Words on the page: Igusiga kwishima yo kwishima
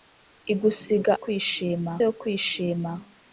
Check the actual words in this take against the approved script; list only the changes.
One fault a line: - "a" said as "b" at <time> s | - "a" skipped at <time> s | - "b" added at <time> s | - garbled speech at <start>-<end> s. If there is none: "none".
none